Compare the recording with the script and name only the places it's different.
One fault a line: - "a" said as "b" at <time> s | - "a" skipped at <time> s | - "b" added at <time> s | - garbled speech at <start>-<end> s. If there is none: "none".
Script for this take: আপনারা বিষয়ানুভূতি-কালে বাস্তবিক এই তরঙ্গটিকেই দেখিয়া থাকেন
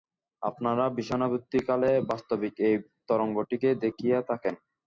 none